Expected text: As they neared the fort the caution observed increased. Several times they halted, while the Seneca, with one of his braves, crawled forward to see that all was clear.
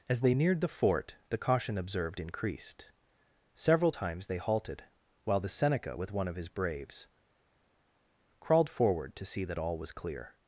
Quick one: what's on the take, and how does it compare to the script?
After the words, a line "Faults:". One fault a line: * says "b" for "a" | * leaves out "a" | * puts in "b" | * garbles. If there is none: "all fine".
As they neared the fort the caution observed increased. Several times they halted, while the Seneca, with one of his braves, crawled forward to see that all was clear.
Faults:
all fine